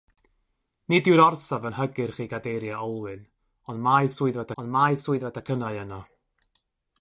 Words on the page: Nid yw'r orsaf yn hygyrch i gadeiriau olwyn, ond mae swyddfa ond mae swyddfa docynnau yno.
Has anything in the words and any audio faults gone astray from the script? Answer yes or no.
no